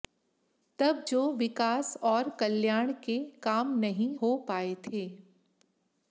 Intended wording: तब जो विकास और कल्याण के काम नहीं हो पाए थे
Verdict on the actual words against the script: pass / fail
pass